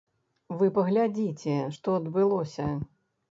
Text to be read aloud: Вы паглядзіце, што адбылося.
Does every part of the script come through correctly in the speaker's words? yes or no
yes